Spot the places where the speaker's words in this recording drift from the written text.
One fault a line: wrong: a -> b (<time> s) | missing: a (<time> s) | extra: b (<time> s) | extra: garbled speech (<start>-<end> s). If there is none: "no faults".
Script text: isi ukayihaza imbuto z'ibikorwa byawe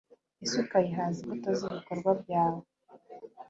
no faults